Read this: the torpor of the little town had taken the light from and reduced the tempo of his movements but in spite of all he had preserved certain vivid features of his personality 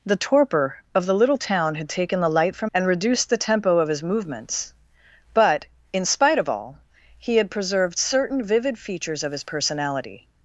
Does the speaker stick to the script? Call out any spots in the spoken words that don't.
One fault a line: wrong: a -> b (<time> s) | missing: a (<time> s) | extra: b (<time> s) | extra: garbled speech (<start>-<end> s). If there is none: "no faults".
no faults